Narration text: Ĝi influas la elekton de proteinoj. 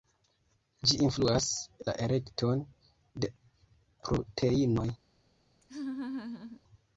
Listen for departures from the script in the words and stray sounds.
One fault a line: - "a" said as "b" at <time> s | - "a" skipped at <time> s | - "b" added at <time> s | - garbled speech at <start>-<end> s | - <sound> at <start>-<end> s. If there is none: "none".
- laugh at 5.6-6.6 s